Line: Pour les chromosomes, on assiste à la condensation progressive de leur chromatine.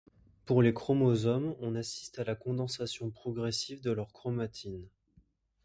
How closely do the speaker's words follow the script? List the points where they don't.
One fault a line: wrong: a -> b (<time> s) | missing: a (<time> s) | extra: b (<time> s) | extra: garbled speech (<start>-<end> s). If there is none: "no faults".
no faults